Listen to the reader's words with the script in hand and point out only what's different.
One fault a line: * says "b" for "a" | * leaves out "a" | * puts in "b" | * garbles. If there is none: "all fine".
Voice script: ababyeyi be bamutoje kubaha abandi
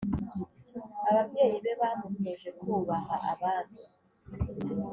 all fine